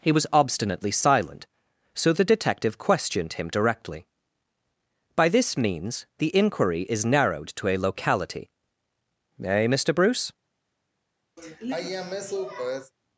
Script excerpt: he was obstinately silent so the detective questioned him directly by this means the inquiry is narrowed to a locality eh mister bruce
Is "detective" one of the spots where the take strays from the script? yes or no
no